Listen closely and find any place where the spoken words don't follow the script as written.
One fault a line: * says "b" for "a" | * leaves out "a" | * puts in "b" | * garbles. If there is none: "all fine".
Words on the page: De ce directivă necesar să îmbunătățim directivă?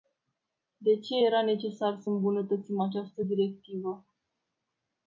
* says "era" for "directivă"
* puts in "această"